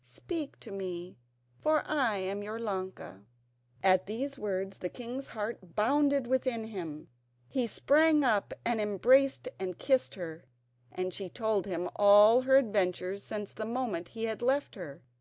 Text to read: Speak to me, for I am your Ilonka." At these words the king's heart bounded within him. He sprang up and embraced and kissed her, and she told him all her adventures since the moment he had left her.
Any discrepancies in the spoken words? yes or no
no